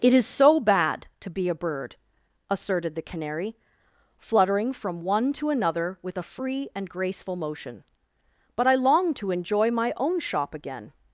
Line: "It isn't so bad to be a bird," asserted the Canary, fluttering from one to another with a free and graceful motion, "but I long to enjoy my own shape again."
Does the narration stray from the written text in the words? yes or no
yes